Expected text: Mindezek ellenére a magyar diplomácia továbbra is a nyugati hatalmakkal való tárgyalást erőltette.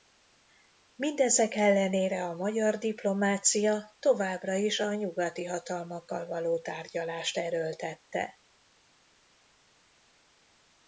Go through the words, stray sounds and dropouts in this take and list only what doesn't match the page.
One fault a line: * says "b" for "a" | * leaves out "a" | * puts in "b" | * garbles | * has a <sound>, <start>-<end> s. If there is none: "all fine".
all fine